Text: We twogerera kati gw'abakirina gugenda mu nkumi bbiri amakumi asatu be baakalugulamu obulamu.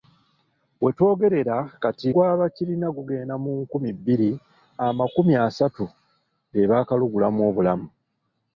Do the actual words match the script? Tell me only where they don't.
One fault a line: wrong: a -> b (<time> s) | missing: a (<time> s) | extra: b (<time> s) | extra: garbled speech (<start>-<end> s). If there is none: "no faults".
no faults